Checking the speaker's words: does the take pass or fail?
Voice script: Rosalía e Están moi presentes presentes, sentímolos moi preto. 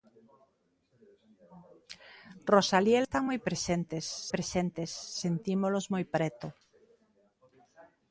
pass